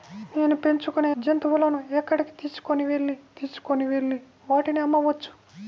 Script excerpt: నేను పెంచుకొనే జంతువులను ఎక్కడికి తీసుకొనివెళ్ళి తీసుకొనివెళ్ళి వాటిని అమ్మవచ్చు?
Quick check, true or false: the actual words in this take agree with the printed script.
true